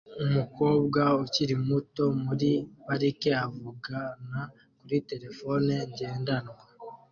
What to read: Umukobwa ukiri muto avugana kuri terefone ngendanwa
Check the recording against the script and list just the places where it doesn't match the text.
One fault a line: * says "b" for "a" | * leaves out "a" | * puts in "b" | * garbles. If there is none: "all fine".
* puts in "muri parike"